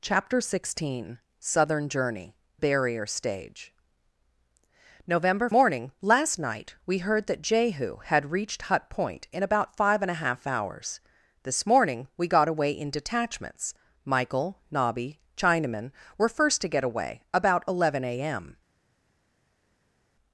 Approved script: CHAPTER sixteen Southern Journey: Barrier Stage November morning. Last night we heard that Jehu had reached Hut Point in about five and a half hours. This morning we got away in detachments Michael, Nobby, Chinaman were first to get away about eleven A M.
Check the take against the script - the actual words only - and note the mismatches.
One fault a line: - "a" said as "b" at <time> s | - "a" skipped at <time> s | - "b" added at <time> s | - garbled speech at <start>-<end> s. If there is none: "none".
none